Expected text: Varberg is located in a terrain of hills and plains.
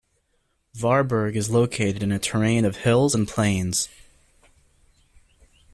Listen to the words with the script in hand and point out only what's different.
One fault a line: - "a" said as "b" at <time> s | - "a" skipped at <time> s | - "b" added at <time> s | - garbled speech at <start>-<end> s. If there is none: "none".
none